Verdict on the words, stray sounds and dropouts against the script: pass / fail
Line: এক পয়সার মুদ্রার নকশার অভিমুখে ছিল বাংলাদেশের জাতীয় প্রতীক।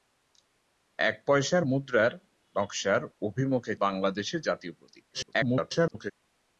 fail